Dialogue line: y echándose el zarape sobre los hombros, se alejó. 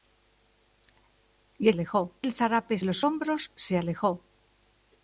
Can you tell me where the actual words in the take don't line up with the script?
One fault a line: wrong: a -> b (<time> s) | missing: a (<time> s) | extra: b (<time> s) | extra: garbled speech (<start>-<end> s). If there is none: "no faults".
wrong: echándose -> alejó (1.7 s)
missing: sobre (2.8 s)